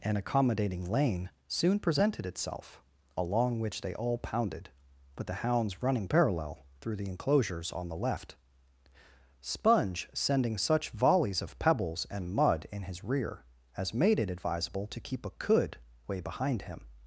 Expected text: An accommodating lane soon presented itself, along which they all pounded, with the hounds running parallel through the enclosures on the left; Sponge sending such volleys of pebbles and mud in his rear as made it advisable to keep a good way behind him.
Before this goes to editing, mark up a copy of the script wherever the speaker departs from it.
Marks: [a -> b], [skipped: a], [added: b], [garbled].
An accommodating lane soon presented itself, along which they all pounded, with the hounds running parallel through the enclosures on the left; Sponge sending such volleys of pebbles and mud in his rear as made it advisable to keep a [good -> could] way behind him.